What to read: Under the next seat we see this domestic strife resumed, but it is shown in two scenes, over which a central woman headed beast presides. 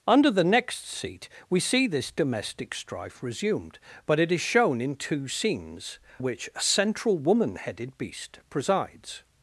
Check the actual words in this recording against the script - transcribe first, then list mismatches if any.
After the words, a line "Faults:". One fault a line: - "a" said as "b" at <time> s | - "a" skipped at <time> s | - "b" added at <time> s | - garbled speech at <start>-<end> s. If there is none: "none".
Under the next seat we see this domestic strife resumed, but it is shown in two scenes, which a central woman headed beast presides.
Faults:
- "over" skipped at 6.0 s